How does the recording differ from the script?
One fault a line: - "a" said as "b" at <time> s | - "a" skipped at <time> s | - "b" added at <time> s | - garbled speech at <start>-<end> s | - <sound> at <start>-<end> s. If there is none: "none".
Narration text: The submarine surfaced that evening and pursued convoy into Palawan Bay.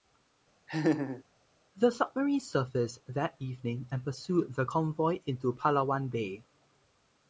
- laugh at 0.7-1.2 s
- "the" added at 4.5 s